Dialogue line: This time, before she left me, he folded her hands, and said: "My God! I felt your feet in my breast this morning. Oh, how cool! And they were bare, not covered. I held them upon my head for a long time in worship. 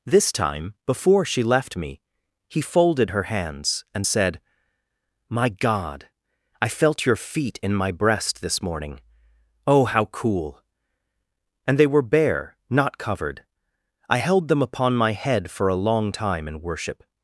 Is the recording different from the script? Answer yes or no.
no